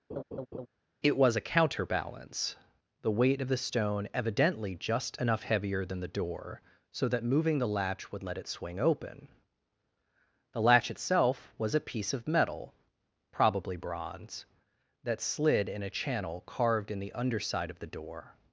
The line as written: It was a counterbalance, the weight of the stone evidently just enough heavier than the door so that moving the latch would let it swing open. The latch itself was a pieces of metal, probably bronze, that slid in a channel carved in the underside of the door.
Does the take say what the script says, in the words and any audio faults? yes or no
no